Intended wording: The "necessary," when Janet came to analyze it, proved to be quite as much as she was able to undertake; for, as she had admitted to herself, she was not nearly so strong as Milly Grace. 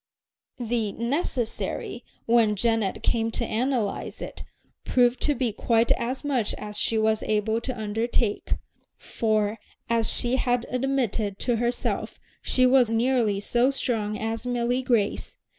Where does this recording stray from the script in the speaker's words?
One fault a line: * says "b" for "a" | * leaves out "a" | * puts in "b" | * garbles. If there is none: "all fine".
* leaves out "not"